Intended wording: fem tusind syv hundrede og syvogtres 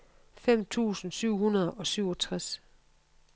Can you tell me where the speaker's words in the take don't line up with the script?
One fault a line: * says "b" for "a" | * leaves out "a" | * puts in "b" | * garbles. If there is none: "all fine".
all fine